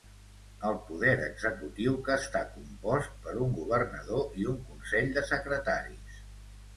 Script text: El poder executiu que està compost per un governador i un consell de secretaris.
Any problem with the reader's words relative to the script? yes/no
no